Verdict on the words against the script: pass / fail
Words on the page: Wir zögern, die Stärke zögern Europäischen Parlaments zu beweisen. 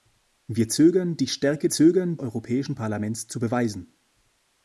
pass